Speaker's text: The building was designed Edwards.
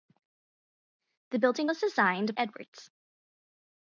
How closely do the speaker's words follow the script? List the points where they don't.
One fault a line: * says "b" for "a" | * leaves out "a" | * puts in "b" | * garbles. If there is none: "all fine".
all fine